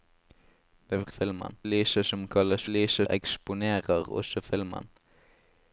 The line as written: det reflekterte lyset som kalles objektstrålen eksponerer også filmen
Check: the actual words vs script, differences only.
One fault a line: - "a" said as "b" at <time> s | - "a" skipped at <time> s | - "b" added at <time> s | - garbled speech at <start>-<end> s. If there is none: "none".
- "reflekterte" said as "filmen" at 1.1 s
- "objektstrålen" said as "lyset" at 2.7 s